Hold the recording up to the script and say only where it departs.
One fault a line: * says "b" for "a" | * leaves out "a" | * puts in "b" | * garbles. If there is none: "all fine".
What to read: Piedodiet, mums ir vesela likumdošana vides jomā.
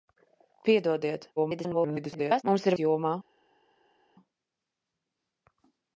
* garbles
* leaves out "vesela likumdošana vides"